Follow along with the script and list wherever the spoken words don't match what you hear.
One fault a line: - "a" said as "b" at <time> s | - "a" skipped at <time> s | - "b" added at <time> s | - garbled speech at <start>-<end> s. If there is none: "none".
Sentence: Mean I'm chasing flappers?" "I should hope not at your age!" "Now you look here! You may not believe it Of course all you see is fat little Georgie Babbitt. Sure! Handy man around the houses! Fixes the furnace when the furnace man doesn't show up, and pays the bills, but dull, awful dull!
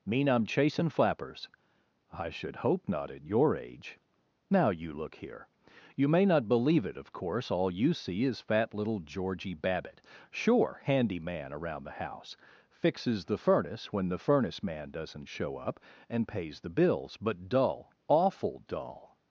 - "houses" said as "house" at 12.0 s